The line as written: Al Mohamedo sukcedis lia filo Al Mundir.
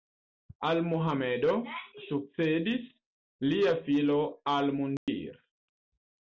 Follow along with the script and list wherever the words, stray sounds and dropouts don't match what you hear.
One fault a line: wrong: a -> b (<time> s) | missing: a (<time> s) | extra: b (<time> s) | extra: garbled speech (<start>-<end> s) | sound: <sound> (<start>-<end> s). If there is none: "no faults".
sound: dropout (5.0-5.1 s)